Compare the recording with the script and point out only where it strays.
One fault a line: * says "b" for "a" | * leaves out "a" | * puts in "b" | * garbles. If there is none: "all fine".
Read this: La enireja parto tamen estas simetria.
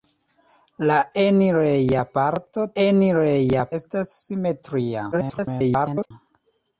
* says "enireja" for "tamen"
* garbles